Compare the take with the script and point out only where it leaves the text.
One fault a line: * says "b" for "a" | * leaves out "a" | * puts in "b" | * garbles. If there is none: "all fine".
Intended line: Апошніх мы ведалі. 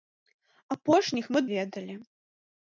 all fine